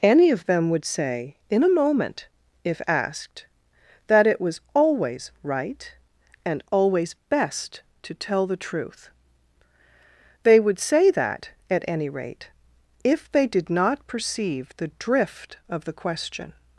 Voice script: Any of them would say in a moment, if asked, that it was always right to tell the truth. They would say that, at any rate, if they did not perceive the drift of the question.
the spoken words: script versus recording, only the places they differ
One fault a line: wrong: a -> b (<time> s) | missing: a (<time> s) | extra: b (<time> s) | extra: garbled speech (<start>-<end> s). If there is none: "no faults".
extra: and always best (6.5 s)